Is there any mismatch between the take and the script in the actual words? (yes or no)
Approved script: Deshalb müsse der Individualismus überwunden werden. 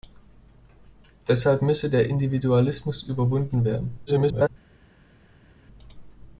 yes